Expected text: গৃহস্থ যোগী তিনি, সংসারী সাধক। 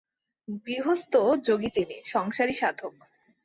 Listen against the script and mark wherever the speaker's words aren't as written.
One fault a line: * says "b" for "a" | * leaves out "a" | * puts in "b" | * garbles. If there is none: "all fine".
all fine